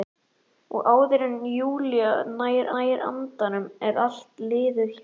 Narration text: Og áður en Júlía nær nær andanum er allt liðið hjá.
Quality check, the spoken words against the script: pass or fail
pass